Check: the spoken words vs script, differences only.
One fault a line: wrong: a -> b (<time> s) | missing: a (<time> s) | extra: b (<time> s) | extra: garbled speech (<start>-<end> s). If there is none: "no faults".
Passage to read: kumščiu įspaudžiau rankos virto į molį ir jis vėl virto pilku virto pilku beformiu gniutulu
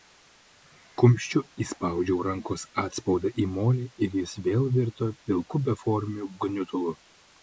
wrong: virto -> atspaudą (2.8 s)
missing: virto pilku (5.6 s)